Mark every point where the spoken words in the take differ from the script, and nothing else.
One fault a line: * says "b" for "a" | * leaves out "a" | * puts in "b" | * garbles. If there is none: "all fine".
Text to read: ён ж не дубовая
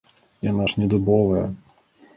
* says "яна" for "ён"